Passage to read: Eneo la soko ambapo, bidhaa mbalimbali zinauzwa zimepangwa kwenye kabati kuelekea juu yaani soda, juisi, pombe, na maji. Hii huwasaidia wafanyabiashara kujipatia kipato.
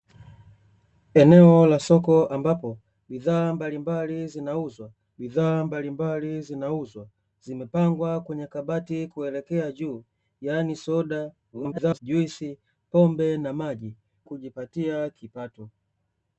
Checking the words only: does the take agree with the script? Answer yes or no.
no